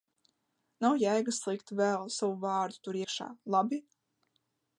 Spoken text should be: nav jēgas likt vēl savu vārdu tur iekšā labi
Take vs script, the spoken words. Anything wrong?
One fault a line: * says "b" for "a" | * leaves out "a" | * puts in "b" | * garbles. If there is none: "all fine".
all fine